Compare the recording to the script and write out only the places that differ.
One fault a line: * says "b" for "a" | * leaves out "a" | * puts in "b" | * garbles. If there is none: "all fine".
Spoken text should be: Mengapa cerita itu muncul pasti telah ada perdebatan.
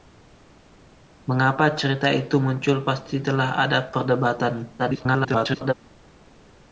* garbles